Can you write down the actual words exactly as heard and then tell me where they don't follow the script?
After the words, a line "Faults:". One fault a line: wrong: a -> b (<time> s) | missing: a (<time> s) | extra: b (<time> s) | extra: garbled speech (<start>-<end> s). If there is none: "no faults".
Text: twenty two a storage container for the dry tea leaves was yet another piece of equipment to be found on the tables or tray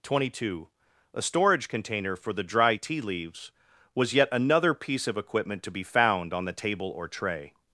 twenty two a storage container for the dry tea leaves was yet another piece of equipment to be found on the table or tray
Faults:
wrong: tables -> table (6.5 s)